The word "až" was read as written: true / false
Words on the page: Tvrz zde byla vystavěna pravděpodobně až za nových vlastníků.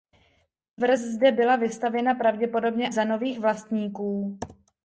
false